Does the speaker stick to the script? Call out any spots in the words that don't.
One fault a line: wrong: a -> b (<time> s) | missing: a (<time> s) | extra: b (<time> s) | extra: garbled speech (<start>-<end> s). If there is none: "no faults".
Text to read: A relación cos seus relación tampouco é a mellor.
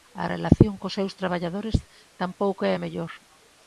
wrong: relación -> traballadores (1.2 s)